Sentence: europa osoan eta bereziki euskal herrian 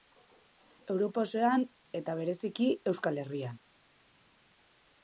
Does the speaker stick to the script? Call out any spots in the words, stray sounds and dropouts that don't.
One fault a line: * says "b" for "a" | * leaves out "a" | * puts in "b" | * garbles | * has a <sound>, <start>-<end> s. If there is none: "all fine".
all fine